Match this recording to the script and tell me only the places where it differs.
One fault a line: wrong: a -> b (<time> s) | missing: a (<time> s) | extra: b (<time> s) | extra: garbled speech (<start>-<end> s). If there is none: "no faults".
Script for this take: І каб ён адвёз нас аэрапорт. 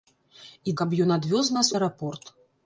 no faults